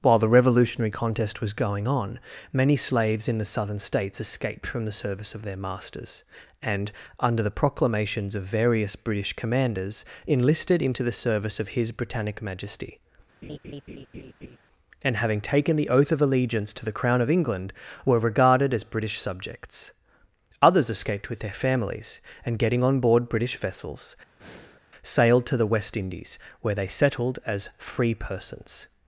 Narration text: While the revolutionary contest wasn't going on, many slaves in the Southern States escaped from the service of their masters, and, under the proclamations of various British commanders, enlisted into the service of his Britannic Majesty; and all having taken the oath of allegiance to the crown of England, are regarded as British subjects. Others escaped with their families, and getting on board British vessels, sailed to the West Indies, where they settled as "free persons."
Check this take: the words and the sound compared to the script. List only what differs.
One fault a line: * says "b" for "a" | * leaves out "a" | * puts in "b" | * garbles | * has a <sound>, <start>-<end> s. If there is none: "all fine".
* says "was" for "wasn't"
* has a laugh, 13.4-14.6 s
* leaves out "all"
* says "were" for "are"
* has a breath, 24.4-24.8 s